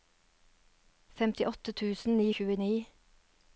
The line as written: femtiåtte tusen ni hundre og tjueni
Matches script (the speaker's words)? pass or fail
fail